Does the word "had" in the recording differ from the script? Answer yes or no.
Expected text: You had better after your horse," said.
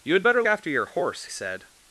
no